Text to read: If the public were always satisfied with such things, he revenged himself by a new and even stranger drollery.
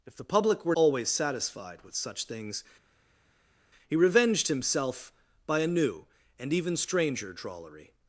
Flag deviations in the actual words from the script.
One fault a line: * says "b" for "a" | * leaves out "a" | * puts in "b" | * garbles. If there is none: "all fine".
all fine